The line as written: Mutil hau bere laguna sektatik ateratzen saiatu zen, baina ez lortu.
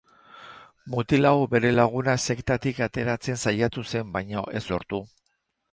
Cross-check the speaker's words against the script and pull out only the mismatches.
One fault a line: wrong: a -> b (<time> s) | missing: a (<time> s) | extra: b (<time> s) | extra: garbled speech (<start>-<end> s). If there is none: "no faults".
no faults